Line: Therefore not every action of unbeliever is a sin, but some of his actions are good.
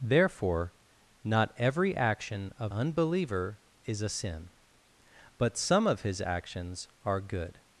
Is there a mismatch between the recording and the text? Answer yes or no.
no